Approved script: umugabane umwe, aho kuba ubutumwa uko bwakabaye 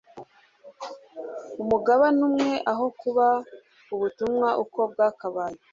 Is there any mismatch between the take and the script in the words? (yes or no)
no